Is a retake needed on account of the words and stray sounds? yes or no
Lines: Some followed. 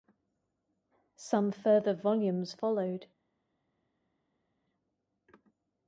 yes